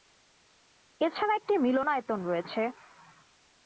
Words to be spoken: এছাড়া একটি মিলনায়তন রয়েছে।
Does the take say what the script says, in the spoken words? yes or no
yes